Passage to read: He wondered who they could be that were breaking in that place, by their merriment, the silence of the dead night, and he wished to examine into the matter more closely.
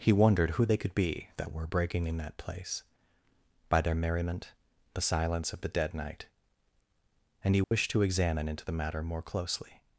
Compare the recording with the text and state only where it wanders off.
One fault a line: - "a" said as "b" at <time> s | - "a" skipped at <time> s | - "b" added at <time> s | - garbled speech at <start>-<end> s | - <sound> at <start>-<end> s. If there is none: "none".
- dropout at 7.6-7.7 s